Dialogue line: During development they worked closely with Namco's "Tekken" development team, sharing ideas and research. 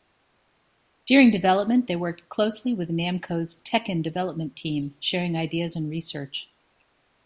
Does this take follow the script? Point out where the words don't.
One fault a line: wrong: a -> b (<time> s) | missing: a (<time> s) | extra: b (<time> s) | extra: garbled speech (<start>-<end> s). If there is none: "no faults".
no faults